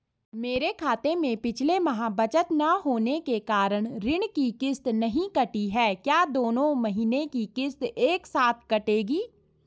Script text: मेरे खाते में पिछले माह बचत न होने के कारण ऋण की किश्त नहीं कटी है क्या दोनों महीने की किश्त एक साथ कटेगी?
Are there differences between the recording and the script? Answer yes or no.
no